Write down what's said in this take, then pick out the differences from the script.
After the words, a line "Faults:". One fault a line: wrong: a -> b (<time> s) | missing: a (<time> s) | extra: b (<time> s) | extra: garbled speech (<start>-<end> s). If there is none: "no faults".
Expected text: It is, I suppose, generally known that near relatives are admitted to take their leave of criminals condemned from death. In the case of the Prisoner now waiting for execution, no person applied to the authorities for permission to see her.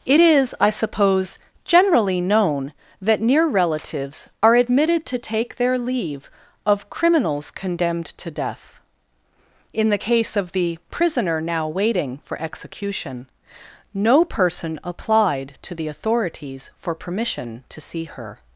It is, I suppose, generally known that near relatives are admitted to take their leave of criminals condemned to death. In the case of the Prisoner now waiting for execution, no person applied to the authorities for permission to see her.
Faults:
wrong: from -> to (8.1 s)